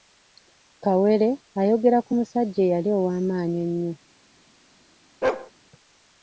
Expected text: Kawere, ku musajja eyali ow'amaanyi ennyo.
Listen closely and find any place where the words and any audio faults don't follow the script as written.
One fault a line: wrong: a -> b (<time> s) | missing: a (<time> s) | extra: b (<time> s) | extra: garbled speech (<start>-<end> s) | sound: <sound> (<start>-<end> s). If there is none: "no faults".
extra: ayogera (1.6 s)
sound: bark (5.2-5.5 s)